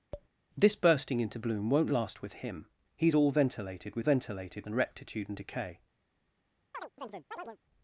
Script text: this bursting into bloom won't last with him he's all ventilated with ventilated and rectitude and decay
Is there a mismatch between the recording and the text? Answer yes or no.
no